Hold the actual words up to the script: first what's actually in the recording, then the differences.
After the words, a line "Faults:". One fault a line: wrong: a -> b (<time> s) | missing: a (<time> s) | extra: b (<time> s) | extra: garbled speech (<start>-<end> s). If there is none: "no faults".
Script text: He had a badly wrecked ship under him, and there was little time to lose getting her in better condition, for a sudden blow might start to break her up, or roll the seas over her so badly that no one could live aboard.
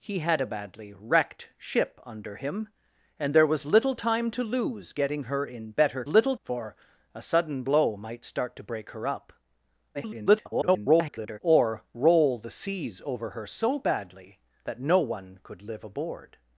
He had a badly wrecked ship under him, and there was little time to lose getting her in better little, for a sudden blow might start to break her up, [garbled] or roll the seas over her so badly that no one could live aboard.
Faults:
wrong: condition -> little (6.1 s)
extra: garbled speech (9.9-11.4 s)